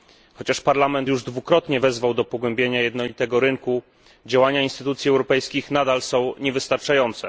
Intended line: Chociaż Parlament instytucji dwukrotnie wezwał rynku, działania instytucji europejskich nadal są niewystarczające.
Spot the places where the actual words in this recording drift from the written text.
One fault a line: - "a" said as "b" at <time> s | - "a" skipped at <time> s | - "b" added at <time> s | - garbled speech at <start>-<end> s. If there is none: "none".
- "instytucji" said as "już" at 1.1 s
- "do pogłębienia jednolitego" added at 2.1 s